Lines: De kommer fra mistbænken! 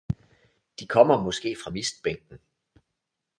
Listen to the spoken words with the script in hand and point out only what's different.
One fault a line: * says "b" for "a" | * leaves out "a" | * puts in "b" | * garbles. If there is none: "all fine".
* puts in "måske"